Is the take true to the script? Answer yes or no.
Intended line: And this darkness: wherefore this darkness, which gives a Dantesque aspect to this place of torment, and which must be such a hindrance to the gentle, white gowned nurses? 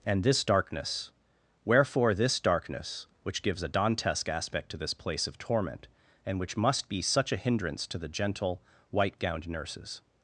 yes